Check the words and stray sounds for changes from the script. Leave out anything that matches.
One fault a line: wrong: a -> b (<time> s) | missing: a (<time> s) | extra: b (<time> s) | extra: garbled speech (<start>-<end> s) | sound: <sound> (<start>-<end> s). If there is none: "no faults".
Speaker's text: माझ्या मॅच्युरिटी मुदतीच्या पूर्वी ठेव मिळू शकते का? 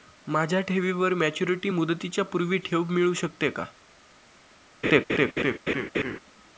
extra: ठेवीवर (0.6 s)
sound: laugh (4.8-6.2 s)